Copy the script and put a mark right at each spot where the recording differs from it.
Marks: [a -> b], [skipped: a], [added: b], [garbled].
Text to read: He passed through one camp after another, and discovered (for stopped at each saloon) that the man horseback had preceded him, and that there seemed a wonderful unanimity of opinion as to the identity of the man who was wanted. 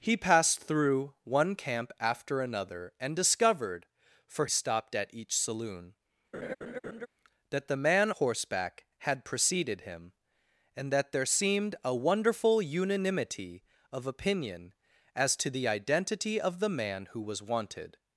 He passed through one camp after another, and discovered (for stopped at each saloon) that the man horseback had preceded him, and that there seemed a wonderful unanimity of opinion as to the identity of the man who was wanted.